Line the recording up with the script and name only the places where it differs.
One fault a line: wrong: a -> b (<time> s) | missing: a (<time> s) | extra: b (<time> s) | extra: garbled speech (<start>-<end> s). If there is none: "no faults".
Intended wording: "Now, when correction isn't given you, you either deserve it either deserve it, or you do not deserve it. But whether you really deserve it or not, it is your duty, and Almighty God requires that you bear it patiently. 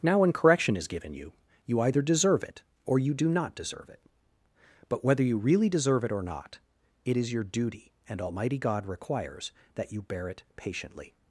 wrong: isn't -> is (0.8 s)
missing: either deserve it (2.6 s)